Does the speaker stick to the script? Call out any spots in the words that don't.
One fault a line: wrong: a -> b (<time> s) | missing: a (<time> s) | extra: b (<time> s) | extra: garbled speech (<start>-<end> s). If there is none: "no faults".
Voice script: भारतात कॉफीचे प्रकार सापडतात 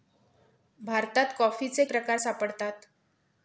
no faults